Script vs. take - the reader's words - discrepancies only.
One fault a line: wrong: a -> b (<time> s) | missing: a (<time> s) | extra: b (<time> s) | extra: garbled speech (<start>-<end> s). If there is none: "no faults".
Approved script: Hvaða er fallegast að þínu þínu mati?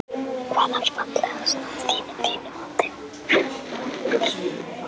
no faults